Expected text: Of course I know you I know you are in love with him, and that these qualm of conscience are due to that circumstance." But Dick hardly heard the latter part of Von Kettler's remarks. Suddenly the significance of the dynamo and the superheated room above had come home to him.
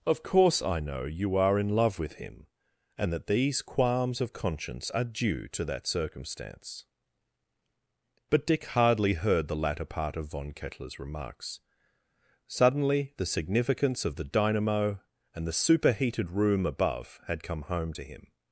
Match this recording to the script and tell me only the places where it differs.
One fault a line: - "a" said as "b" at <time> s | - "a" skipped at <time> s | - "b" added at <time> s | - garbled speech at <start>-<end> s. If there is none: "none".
- "I know you" skipped at 1.4 s
- "qualm" said as "qualms" at 3.6 s